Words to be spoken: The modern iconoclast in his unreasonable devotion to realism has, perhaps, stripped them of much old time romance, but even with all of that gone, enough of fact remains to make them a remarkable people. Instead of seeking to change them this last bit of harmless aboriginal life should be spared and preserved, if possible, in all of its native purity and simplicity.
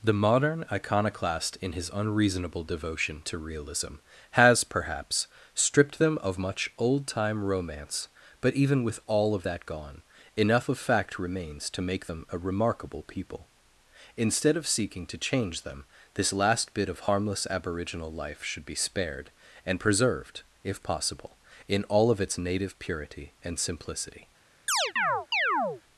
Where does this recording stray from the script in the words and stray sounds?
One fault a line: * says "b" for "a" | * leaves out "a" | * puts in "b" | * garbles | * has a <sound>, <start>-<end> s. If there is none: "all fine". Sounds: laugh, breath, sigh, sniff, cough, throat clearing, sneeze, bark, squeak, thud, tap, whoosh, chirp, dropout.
* has a chirp, 24.7-25.8 s